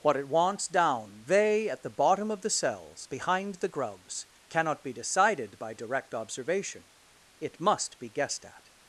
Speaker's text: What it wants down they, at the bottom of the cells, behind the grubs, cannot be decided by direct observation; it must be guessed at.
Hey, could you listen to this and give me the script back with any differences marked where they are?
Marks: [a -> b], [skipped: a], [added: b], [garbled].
What it wants down they, at the bottom of the cells, behind the grubs, cannot be decided by direct observation; it must be guessed at.